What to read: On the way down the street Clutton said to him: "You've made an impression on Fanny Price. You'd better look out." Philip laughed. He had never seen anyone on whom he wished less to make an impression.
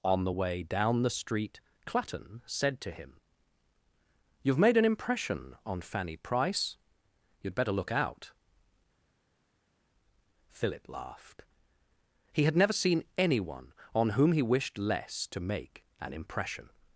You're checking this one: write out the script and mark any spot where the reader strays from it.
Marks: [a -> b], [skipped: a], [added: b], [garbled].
On the way down the street Clutton said to him: "You've made an impression on Fanny Price. You'd better look out." Philip laughed. He had never seen anyone on whom he wished less to make an impression.